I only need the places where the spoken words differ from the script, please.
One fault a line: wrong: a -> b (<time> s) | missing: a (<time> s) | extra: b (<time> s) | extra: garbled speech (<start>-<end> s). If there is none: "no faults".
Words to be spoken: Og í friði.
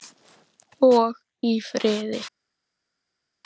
no faults